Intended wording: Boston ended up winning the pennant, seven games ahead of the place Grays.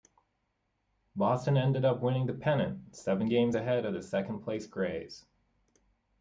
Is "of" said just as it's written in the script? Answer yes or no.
yes